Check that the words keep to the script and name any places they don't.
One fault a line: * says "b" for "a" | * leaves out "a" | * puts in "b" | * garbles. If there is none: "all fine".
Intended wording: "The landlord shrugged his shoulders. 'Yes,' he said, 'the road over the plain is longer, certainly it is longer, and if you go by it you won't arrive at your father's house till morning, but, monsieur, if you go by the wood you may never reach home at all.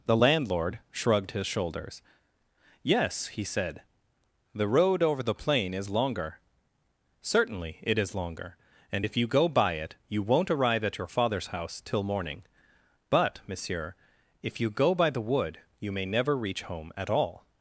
all fine